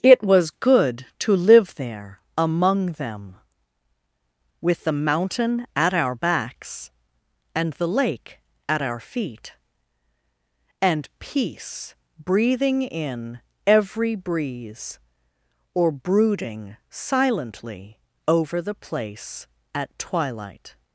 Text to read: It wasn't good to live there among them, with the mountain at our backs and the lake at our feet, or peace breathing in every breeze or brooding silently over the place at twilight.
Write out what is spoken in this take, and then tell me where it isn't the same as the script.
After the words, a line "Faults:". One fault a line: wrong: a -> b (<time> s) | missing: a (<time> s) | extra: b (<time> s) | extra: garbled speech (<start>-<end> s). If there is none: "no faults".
It was good to live there among them, with the mountain at our backs and the lake at our feet, and peace breathing in every breeze or brooding silently over the place at twilight.
Faults:
wrong: wasn't -> was (0.2 s)
wrong: or -> and (10.8 s)